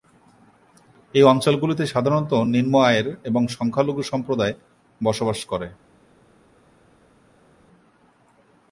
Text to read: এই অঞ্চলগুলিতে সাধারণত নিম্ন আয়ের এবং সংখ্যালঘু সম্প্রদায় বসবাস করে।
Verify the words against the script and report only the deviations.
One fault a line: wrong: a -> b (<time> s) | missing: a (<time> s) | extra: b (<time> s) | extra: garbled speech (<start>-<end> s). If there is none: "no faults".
no faults